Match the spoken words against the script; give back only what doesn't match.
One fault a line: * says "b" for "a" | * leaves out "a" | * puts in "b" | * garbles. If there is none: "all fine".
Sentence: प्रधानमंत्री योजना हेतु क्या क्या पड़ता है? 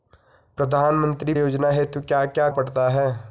all fine